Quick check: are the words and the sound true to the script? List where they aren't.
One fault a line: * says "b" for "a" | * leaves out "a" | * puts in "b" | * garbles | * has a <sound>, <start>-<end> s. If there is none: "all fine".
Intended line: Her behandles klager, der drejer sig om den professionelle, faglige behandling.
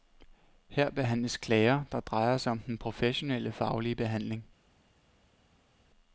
all fine